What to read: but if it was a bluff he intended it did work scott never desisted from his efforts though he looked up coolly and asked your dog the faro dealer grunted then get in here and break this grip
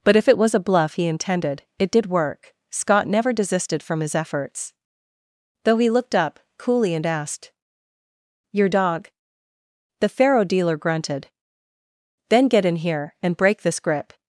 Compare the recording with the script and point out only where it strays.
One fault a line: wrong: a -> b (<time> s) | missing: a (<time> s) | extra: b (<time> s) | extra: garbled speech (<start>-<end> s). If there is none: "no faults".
no faults